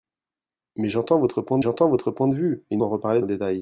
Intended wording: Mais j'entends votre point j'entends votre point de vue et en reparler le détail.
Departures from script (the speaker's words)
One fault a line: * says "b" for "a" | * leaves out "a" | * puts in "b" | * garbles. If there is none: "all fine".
all fine